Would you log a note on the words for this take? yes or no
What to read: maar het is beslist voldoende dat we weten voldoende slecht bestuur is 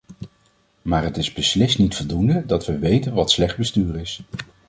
yes